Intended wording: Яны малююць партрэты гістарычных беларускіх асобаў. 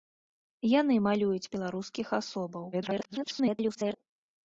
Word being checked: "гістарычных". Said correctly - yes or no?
no